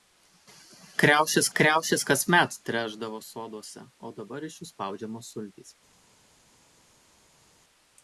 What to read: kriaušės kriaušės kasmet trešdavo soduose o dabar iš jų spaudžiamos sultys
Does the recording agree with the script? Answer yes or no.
yes